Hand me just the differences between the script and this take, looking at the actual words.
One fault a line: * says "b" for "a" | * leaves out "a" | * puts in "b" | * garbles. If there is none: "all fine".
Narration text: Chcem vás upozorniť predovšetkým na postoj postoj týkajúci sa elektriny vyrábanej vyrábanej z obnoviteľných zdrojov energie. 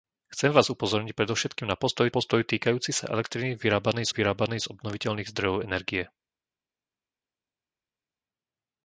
all fine